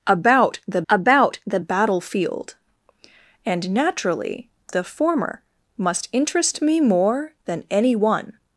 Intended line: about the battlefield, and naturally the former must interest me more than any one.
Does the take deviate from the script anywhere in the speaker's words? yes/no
yes